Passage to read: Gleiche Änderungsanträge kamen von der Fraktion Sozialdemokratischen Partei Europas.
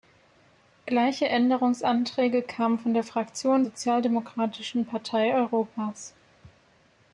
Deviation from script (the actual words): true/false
false